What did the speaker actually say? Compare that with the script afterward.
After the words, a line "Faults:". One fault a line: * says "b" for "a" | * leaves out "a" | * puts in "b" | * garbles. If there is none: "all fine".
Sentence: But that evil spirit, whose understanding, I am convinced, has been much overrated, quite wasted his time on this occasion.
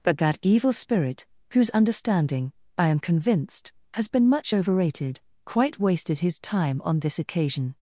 But that evil spirit, whose understanding, I am convinced, has been much overrated, quite wasted his time on this occasion.
Faults:
all fine